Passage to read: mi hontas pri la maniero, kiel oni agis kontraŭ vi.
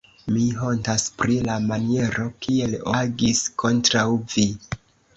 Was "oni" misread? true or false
true